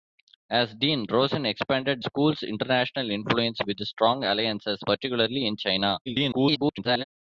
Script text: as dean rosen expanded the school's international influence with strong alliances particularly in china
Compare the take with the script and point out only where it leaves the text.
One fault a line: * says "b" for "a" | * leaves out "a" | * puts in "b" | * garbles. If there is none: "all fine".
* leaves out "the"
* garbles